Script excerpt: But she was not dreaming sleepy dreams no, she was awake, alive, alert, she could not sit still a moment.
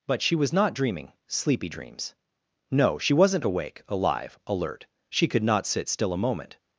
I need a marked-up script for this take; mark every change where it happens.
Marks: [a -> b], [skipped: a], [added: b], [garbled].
But she was not dreaming sleepy dreams no, she [was -> wasn't] awake, alive, alert, she could not sit still a moment.